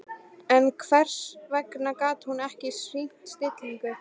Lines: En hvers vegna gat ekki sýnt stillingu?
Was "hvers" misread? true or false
false